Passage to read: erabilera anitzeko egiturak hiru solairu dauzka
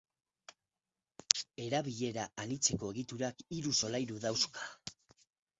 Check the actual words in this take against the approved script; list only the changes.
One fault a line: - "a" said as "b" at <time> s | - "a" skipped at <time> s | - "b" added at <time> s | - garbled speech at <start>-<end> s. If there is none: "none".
none